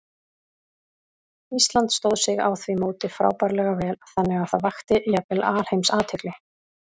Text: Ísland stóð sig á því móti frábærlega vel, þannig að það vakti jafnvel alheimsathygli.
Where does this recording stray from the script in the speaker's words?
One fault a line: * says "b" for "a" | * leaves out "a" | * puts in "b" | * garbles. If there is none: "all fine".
all fine